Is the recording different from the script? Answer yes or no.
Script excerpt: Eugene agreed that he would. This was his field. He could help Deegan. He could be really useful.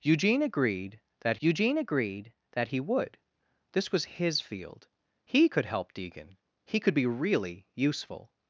yes